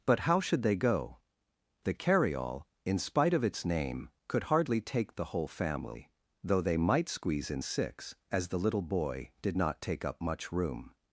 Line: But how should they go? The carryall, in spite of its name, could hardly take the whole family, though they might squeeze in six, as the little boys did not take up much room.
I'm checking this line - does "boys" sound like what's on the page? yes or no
no